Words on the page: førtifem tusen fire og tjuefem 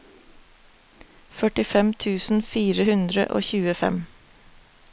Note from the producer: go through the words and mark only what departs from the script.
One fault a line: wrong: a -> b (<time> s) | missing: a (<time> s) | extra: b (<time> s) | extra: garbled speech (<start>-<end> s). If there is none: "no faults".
extra: hundre (2.9 s)